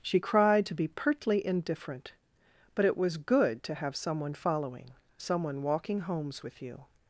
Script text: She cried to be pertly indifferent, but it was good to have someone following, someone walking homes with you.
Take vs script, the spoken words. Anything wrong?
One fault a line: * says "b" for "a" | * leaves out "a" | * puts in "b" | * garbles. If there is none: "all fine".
all fine